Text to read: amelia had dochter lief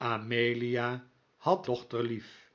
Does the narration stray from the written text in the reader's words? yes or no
no